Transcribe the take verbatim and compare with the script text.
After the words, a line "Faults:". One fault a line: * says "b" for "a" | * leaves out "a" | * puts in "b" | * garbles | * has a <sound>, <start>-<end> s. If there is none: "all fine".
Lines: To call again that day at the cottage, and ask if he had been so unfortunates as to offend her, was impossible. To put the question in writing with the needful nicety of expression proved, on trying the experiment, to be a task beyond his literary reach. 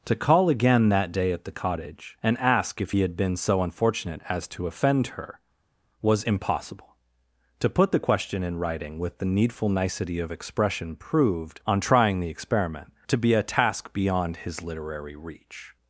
To call again that day at the cottage, and ask if he had been so unfortunate as to offend her, was impossible. To put the question in writing with the needful nicety of expression proved, on trying the experiment, to be a task beyond his literary reach.
Faults:
* says "unfortunate" for "unfortunates"